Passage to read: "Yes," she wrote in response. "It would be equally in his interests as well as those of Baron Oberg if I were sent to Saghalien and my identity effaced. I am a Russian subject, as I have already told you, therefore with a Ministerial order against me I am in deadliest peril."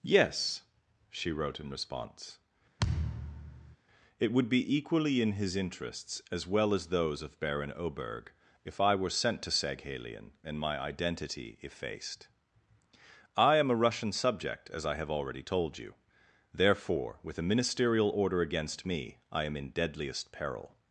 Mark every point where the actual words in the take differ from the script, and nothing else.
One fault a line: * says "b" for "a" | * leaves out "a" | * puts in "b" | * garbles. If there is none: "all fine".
all fine